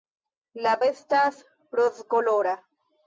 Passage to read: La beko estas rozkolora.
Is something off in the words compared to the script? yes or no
yes